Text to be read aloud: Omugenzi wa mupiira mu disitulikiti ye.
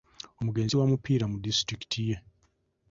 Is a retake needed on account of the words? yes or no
no